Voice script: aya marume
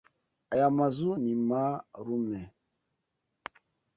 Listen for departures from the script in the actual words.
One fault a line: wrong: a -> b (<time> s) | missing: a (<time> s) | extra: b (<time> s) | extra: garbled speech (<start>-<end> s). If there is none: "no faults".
extra: mazu ni (0.8 s)